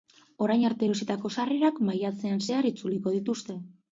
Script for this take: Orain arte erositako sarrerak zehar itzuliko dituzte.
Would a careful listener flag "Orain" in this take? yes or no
no